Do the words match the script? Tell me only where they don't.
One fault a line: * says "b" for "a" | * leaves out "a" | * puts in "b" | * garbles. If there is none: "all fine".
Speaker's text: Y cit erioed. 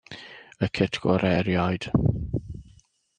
* puts in "gorau"